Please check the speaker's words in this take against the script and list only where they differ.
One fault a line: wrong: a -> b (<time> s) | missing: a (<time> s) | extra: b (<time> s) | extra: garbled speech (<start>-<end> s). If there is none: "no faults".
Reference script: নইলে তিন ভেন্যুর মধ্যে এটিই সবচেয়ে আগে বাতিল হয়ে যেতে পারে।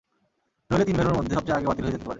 missing: এটিই (1.4 s)
extra: যেতে (2.0 s)